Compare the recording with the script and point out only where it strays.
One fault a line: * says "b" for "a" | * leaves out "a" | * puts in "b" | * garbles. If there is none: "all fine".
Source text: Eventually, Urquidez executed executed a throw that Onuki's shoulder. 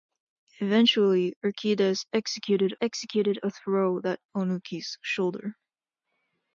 all fine